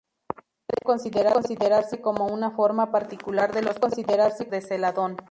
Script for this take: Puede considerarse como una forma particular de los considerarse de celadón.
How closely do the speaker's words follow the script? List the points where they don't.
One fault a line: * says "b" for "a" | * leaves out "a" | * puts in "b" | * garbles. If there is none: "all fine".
all fine